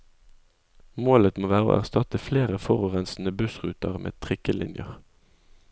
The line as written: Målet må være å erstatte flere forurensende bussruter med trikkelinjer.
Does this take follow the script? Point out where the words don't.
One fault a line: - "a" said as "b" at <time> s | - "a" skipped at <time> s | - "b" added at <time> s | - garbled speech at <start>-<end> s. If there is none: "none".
none